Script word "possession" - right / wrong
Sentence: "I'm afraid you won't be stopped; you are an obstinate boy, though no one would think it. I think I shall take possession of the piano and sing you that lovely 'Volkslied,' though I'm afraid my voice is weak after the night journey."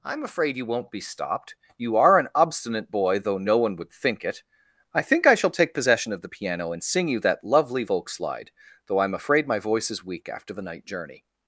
right